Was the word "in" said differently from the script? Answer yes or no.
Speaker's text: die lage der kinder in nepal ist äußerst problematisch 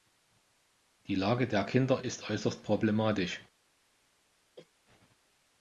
yes